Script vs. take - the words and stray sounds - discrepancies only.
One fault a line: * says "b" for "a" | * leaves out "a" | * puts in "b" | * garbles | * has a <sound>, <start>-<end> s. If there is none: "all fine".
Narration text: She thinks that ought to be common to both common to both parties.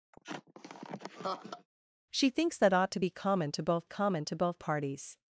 * has a laugh, 0.1-1.7 s